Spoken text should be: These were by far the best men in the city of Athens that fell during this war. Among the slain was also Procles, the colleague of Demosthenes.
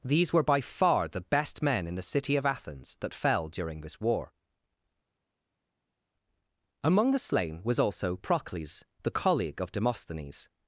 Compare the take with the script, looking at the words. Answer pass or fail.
pass